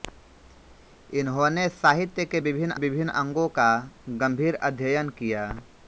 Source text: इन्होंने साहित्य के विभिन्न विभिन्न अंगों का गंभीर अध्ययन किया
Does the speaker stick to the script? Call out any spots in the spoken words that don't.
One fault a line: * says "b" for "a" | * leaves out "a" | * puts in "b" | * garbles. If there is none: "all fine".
all fine